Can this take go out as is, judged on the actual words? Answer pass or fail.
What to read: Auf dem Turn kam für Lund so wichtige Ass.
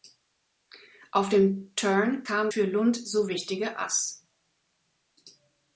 pass